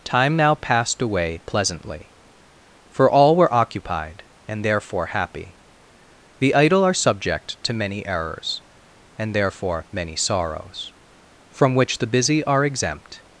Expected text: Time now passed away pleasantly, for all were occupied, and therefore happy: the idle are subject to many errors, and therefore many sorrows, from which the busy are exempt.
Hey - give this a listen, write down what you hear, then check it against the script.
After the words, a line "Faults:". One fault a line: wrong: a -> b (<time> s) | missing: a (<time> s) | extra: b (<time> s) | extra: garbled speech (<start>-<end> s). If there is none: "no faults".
Time now passed away pleasantly, for all were occupied, and therefore happy: the idle are subject to many errors, and therefore many sorrows, from which the busy are exempt.
Faults:
no faults